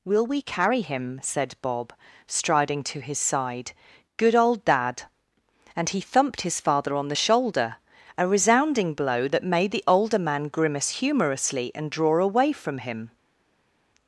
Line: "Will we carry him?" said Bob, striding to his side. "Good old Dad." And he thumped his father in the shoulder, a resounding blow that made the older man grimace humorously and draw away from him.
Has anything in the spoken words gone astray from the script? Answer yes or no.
yes